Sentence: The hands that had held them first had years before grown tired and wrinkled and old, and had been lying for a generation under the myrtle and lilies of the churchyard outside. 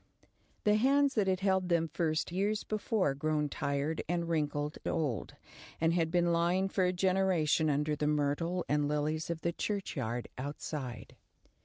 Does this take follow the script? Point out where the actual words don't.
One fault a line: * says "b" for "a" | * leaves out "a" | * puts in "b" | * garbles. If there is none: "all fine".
* leaves out "had"
* leaves out "and"